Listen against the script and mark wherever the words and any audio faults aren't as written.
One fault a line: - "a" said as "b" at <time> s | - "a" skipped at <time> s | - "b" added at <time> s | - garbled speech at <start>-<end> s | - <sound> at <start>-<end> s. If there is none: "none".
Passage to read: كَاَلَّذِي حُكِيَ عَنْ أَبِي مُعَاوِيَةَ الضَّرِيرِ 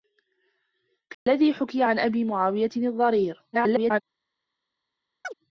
- dropout at 1.1-1.3 s
- garbled speech at 3.5-4.0 s
- chirp at 5.2-5.3 s